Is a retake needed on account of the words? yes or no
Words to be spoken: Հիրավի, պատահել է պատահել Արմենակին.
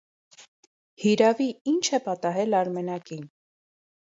yes